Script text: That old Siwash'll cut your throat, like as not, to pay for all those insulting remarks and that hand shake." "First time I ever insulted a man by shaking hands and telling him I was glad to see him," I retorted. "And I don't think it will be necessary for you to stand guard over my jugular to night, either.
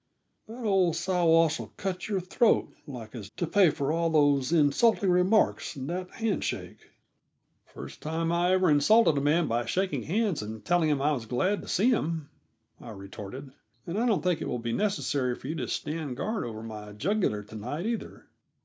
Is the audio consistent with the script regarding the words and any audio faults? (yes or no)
no